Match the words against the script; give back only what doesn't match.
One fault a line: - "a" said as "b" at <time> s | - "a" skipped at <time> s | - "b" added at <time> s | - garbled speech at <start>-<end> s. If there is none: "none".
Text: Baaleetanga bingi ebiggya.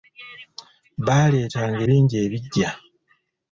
none